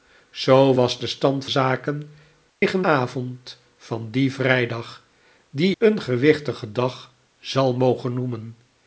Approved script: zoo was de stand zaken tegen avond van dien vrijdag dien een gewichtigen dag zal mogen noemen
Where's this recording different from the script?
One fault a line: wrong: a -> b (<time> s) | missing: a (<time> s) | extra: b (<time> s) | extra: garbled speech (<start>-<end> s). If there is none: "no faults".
no faults